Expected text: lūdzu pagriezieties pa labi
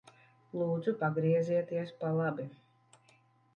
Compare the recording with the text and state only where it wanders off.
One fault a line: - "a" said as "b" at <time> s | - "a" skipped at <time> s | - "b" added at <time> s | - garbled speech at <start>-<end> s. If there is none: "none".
none